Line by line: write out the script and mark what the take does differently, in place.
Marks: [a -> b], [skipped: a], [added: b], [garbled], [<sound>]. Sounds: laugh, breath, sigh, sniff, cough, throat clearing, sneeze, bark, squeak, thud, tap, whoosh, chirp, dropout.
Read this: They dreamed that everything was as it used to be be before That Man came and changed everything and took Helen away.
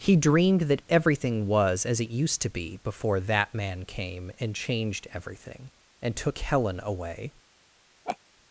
[They -> He] dreamed that everything was as it used to be [skipped: be] before That Man came and changed everything and took Helen away. [laugh]